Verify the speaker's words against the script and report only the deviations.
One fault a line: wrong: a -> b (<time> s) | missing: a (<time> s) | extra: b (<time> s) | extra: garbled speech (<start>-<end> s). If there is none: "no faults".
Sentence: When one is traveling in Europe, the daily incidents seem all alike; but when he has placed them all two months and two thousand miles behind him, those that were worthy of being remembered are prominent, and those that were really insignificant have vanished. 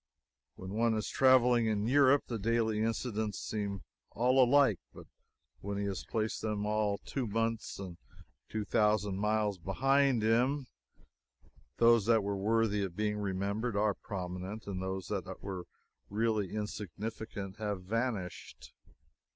no faults